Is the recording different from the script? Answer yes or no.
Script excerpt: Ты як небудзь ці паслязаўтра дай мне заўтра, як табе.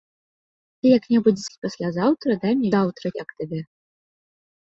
no